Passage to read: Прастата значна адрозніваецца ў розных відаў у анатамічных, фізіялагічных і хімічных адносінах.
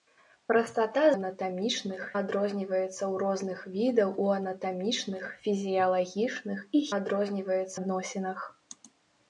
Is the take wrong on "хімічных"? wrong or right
wrong